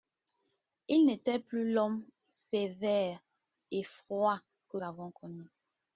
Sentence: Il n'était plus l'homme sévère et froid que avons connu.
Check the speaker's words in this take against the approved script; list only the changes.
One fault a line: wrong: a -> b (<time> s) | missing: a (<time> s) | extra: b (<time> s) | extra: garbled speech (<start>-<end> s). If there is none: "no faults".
no faults